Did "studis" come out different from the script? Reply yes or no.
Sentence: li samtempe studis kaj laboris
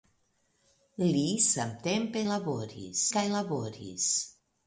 yes